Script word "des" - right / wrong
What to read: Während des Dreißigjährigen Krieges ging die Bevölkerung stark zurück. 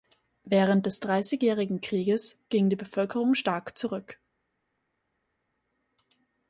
right